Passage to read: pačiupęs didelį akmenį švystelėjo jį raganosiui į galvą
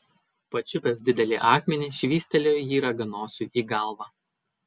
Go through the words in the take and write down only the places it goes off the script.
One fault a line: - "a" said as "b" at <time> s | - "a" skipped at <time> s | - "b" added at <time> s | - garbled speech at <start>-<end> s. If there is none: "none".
none